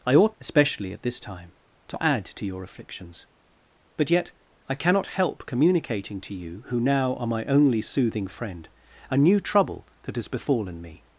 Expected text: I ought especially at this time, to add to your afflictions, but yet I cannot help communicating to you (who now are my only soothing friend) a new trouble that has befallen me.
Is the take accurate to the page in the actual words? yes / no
yes